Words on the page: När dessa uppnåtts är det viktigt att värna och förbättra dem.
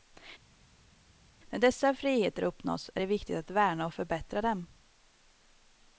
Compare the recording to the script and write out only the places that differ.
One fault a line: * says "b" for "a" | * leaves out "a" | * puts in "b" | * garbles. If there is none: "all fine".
* puts in "friheter"